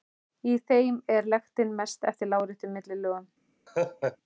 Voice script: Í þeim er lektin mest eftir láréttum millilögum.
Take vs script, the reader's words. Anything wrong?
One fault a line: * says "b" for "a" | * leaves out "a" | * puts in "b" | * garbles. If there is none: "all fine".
all fine